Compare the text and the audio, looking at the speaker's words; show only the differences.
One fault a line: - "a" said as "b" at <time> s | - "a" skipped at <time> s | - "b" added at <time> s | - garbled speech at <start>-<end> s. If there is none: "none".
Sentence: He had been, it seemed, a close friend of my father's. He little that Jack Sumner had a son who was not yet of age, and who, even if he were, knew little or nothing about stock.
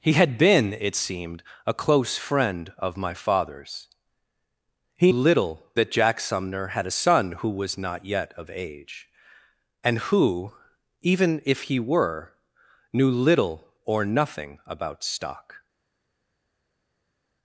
none